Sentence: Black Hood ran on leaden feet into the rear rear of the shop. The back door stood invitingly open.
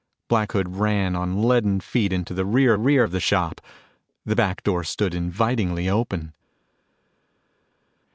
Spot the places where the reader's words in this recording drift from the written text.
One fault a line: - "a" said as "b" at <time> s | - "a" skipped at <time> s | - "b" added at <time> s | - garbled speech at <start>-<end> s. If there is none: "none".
none